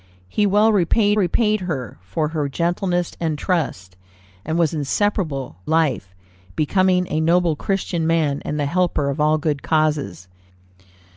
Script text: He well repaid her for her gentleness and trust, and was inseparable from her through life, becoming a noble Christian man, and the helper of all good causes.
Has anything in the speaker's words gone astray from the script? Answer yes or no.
yes